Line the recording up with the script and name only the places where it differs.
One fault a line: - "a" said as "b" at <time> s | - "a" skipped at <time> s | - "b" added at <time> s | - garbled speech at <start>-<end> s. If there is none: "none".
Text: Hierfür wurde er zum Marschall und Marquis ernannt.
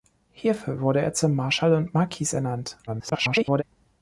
- garbled speech at 2.9-3.6 s